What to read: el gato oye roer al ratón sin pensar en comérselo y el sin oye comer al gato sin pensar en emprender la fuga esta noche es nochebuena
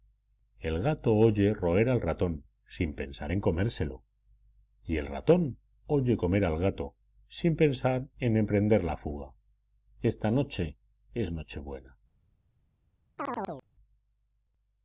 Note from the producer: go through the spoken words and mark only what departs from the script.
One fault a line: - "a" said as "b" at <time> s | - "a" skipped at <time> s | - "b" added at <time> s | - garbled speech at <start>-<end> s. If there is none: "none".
- "sin" said as "ratón" at 5.1 s